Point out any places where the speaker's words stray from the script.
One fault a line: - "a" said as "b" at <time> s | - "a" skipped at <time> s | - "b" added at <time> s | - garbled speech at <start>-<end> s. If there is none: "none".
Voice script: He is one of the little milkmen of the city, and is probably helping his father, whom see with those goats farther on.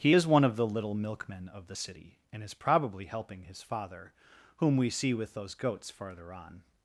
- "we" added at 4.8 s